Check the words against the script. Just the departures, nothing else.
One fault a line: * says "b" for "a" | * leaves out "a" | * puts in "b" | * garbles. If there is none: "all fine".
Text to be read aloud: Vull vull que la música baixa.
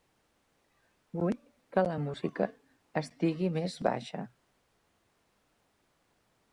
* leaves out "vull"
* puts in "estigui més"